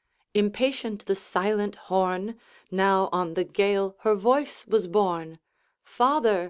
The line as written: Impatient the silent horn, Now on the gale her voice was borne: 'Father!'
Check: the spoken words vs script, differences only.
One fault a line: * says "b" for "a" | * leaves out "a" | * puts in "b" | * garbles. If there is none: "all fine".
all fine